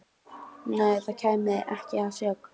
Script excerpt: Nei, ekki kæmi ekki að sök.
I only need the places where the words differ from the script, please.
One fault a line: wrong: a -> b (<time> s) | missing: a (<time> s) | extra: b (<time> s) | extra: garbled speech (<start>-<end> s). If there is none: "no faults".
wrong: ekki -> það (1.1 s)